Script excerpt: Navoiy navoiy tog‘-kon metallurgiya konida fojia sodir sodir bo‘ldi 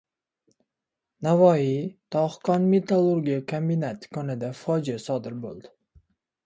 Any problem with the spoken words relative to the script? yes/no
yes